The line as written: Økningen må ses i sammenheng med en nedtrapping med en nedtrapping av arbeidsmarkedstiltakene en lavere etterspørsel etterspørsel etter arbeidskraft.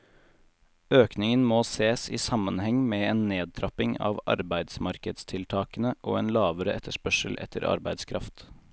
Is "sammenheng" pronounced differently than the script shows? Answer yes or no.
no